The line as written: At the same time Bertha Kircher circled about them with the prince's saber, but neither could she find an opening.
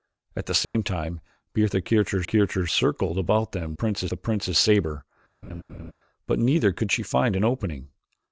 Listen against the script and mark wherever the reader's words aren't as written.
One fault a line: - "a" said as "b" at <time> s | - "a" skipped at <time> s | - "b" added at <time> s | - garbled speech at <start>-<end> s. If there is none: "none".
- "Kircher" added at 2.2 s
- "with" said as "prince's" at 3.7 s